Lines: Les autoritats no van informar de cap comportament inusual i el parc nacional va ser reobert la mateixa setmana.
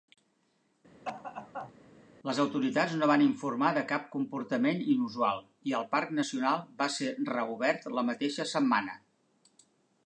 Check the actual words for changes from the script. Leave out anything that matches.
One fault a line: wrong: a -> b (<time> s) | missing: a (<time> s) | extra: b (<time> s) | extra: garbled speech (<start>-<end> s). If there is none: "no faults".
no faults